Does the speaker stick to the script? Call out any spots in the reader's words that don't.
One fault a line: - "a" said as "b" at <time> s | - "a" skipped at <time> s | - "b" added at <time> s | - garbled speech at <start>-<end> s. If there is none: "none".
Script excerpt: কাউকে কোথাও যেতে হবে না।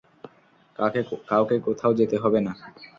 none